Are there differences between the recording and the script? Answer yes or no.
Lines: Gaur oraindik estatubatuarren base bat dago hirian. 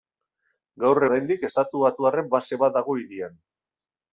no